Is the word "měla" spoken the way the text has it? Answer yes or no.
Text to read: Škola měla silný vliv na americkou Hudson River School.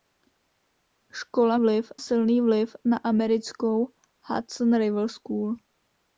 no